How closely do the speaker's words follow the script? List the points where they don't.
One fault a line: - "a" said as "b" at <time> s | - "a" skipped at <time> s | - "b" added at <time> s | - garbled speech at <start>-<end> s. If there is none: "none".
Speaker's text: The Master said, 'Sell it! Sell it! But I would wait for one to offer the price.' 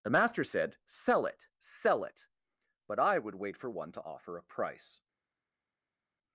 - "the" said as "a" at 4.4 s